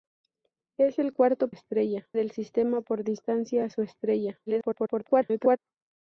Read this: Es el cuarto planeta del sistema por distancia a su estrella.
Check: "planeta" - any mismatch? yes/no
yes